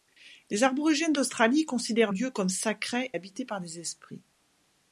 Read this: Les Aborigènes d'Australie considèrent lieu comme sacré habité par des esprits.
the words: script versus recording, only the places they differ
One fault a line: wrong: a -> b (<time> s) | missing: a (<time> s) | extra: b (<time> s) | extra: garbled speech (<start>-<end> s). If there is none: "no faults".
no faults